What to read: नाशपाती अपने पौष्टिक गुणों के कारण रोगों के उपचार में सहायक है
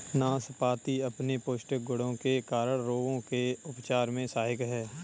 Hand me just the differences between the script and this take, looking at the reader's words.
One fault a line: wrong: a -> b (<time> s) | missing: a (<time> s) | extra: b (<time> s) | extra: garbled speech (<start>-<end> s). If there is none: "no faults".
no faults